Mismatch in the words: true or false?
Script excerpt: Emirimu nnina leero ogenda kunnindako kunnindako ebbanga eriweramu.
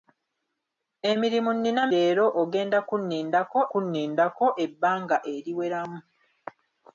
false